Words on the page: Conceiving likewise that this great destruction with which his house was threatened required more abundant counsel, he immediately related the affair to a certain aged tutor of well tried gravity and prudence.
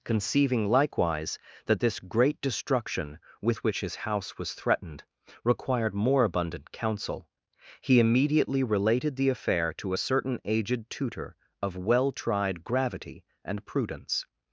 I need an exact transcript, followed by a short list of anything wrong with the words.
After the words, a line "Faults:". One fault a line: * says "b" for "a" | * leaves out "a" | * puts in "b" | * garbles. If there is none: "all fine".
Conceiving likewise that this great destruction with which his house was threatened required more abundant counsel, he immediately related the affair to a certain aged tutor of well tried gravity and prudence.
Faults:
all fine